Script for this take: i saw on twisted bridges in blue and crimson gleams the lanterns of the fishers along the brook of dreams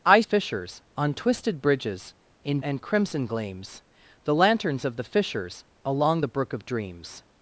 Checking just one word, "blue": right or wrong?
wrong